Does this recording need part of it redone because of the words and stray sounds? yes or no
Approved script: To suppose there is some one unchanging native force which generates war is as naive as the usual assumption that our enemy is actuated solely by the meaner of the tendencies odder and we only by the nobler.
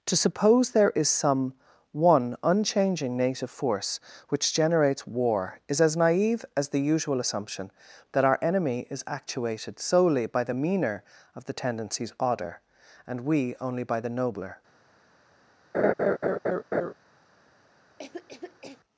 yes